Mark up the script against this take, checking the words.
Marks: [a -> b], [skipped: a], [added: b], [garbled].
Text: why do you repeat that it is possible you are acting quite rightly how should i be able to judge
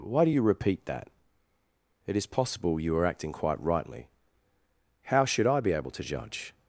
why do you repeat that it is possible you are acting quite rightly how should i be able to judge